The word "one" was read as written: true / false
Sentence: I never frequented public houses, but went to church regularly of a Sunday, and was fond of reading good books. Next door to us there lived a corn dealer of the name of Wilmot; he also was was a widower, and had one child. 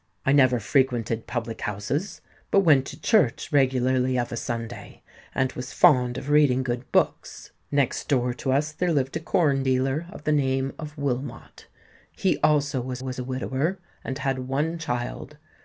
true